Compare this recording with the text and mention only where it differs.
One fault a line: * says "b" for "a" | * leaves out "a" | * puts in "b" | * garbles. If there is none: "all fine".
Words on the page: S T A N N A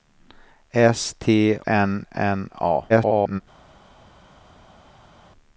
* leaves out "A"
* garbles